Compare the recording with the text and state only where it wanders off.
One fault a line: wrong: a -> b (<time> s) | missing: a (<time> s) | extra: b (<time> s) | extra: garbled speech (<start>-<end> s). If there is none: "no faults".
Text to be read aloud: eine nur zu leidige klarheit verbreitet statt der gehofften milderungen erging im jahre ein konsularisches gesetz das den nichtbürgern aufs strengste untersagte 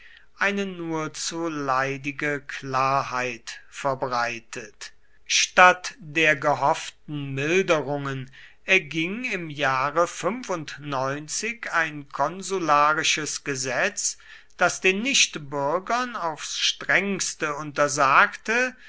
no faults